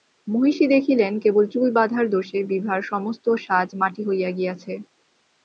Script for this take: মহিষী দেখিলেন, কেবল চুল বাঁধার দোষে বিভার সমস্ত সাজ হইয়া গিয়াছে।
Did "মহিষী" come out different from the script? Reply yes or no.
no